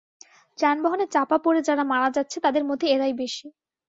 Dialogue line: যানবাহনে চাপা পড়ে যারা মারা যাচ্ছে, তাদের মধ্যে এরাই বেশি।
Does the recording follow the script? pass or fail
pass